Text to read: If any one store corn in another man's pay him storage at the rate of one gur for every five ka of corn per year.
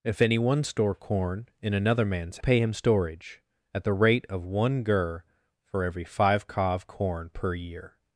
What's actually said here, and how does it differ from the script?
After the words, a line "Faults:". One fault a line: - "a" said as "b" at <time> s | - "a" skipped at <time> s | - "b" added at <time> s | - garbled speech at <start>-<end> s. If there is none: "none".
If any one store corn in another man's pay him storage at the rate of one gur for every five ka of corn per year.
Faults:
none